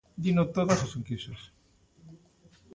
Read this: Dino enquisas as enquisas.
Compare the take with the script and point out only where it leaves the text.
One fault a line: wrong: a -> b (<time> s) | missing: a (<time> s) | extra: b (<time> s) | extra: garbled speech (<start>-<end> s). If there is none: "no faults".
wrong: enquisas -> todas (0.6 s)